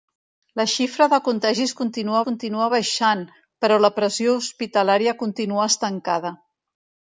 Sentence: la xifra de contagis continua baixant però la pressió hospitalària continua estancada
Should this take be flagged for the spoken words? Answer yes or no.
yes